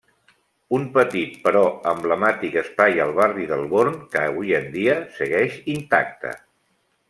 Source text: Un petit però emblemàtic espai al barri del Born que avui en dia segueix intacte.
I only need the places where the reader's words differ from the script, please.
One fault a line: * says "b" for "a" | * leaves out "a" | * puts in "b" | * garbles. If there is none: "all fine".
all fine